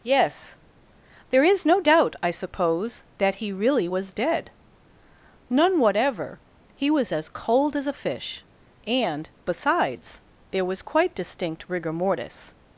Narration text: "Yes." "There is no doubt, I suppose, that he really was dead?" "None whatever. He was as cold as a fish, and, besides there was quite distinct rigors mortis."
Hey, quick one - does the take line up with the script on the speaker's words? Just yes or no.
no